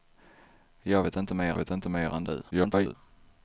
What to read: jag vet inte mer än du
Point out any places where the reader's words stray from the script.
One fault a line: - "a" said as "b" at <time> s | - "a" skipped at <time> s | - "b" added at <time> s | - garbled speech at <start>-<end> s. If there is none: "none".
- "vet inte mer" added at 1.5 s
- garbled speech at 2.5-2.9 s